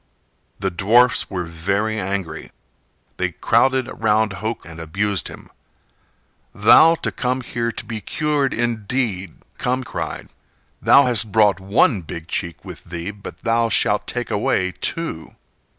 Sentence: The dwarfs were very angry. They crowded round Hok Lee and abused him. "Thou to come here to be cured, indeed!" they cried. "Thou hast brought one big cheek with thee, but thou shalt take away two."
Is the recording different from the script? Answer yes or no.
yes